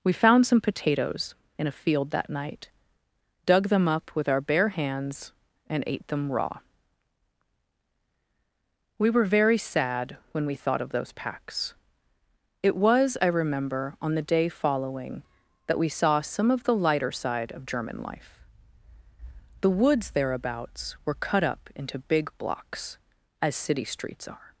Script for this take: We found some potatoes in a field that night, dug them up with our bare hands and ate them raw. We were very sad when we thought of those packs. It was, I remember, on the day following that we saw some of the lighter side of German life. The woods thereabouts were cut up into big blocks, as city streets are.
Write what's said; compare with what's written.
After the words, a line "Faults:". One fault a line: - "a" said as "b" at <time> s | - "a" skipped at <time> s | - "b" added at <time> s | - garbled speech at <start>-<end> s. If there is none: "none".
We found some potatoes in a field that night, dug them up with our bare hands and ate them raw. We were very sad when we thought of those packs. It was, I remember, on the day following that we saw some of the lighter side of German life. The woods thereabouts were cut up into big blocks, as city streets are.
Faults:
none